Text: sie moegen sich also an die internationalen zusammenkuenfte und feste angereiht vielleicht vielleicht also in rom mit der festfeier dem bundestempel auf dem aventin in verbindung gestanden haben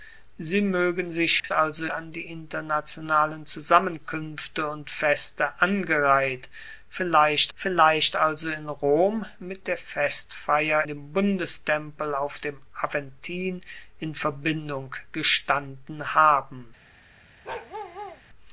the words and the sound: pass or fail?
fail